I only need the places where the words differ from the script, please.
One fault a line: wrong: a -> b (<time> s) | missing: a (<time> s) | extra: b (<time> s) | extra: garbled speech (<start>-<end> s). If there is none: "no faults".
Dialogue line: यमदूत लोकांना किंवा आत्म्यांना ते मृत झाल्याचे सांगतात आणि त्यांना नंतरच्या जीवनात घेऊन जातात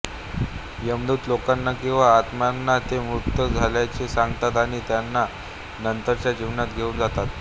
no faults